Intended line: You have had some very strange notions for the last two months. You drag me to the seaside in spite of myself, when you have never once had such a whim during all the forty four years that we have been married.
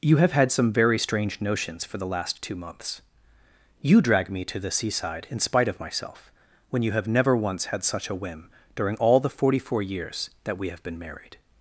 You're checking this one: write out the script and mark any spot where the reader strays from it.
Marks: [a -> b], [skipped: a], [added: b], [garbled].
You have had some very strange notions for the last two months. You drag me to the seaside in spite of myself, when you have never once had such a whim during all the forty four years that we have been married.